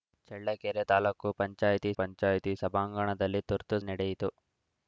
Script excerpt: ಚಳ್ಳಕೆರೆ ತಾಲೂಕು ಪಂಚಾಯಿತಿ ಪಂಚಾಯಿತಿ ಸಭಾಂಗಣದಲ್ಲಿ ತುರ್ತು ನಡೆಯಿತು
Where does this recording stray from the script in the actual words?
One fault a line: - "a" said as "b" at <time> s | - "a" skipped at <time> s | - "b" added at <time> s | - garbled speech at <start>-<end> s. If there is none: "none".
none